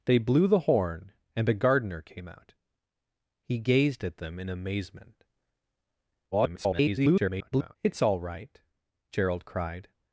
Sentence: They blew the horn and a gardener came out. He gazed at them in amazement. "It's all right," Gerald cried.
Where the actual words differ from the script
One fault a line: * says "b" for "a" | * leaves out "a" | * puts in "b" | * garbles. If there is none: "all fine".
* garbles